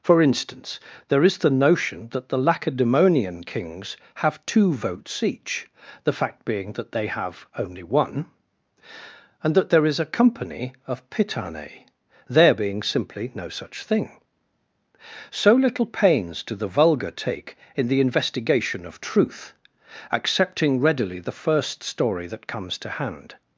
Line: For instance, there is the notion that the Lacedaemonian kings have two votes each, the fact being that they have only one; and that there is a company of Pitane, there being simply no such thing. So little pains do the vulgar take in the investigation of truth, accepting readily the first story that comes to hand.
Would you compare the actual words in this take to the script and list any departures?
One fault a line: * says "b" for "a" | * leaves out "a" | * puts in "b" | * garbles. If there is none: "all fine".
all fine